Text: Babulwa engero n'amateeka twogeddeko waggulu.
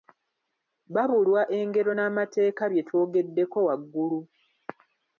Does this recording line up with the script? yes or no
no